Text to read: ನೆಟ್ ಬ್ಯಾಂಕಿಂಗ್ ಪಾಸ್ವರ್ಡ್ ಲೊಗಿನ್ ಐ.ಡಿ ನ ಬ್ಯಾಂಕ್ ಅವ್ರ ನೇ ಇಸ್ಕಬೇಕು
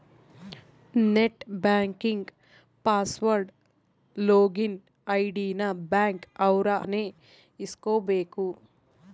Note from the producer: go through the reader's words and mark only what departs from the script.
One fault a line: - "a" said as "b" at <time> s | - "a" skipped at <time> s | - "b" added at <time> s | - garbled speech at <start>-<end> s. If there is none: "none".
none